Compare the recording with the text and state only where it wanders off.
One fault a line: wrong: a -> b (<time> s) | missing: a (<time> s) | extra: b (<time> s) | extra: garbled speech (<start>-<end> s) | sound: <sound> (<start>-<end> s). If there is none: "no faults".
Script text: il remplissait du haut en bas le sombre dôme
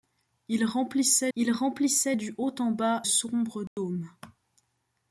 extra: il remplissait (1.3 s)
missing: le (3.0 s)
sound: dropout (3.7-3.8 s)